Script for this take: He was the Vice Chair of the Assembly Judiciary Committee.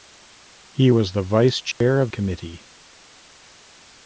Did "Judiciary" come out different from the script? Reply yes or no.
yes